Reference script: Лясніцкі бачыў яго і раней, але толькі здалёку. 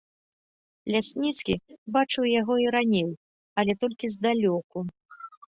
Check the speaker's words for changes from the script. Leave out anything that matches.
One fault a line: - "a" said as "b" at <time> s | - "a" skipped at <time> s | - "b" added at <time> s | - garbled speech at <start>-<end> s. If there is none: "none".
none